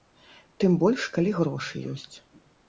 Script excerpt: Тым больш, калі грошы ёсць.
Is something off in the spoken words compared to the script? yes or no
no